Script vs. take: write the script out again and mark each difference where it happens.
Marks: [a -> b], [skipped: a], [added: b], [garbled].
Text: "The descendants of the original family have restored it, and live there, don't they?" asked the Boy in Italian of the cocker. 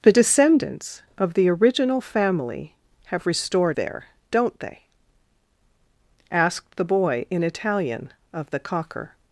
"The descendants of the original family have restored [skipped: it, and live] there, don't they?" asked the Boy in Italian of the cocker.